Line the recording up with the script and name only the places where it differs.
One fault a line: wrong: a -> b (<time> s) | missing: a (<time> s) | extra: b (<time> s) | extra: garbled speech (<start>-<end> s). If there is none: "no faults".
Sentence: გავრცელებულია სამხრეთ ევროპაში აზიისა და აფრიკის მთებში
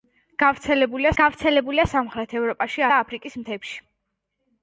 extra: გავრცელებულია (1.2 s)
missing: აზიისა (2.8 s)